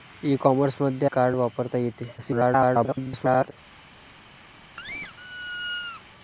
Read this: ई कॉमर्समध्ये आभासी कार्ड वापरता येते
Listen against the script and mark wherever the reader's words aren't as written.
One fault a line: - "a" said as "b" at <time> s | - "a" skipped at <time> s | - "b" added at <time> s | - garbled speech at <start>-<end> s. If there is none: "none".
- "आभासी" skipped at 1.1 s
- garbled speech at 2.2-3.5 s